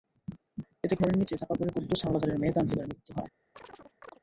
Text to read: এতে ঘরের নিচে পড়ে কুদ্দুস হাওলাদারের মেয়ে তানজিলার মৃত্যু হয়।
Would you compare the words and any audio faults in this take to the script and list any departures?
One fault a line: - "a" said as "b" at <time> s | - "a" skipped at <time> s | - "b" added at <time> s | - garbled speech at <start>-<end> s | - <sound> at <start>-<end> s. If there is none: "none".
- "চাপা" added at 1.4 s
- chirp at 3.5-4.2 s